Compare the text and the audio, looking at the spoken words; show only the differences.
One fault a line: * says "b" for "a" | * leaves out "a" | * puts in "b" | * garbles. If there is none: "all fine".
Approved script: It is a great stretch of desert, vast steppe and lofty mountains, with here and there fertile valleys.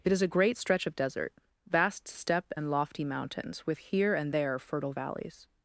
all fine